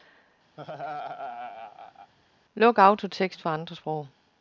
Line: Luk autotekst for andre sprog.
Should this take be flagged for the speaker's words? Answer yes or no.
no